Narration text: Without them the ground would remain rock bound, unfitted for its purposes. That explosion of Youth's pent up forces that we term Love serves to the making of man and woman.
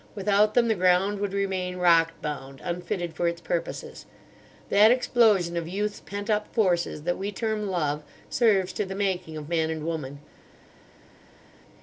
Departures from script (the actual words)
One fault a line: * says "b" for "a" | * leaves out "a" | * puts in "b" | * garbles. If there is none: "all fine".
all fine